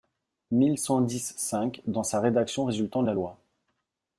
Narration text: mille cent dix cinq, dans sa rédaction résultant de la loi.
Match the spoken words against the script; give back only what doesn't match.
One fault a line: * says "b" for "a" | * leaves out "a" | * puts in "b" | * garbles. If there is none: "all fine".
all fine